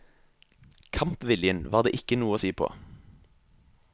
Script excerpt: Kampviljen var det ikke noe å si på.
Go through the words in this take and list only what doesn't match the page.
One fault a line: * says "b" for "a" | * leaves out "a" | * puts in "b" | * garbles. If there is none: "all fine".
all fine